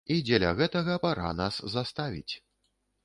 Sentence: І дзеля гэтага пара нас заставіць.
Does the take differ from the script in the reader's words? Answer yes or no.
no